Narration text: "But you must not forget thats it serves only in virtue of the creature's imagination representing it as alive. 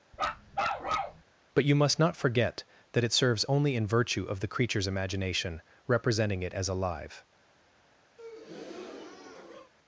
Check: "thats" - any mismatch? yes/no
yes